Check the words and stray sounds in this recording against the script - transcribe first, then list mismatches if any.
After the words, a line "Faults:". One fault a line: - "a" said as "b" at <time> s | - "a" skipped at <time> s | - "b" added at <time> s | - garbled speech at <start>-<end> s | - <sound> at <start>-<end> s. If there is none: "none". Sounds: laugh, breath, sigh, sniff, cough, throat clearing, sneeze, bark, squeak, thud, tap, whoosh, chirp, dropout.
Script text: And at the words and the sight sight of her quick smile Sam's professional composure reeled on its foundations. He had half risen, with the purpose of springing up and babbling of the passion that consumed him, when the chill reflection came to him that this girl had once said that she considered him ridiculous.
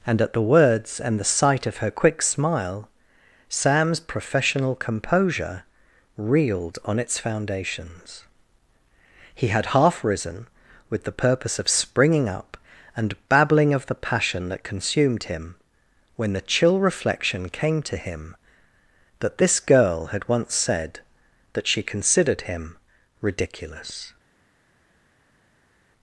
And at the words and the sight of her quick smile Sam's professional composure reeled on its foundations. He had half risen, with the purpose of springing up and babbling of the passion that consumed him, when the chill reflection came to him that this girl had once said that she considered him ridiculous.
Faults:
- "sight" skipped at 1.7 s